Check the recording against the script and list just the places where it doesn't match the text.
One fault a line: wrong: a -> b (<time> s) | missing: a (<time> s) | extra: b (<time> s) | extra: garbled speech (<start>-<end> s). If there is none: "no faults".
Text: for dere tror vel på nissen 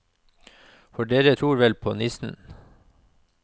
no faults